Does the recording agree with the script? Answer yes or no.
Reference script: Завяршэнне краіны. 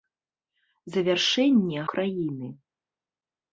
yes